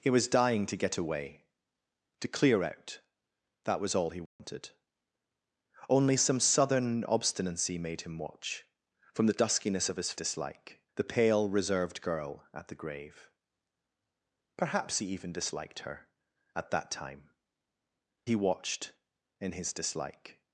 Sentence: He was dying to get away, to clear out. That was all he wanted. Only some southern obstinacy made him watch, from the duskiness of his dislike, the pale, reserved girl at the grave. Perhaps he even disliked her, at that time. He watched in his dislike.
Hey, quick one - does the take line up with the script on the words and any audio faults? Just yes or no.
no